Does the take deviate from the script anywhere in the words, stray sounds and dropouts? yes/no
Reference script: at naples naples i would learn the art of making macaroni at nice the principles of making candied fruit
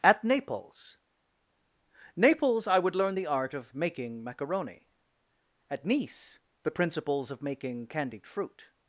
no